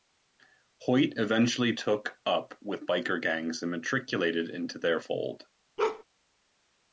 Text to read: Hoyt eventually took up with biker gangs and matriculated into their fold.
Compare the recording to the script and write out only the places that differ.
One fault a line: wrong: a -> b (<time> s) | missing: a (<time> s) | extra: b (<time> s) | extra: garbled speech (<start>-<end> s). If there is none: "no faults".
no faults